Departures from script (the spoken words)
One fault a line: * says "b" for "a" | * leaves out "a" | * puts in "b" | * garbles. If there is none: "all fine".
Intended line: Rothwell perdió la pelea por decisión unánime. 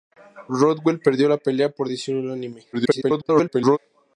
* garbles